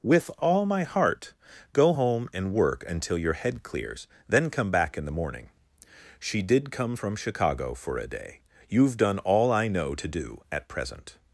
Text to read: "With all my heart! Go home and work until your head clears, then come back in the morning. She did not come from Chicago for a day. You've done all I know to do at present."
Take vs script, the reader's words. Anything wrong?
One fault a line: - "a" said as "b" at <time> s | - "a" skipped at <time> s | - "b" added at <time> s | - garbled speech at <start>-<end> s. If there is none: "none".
- "not" skipped at 6.7 s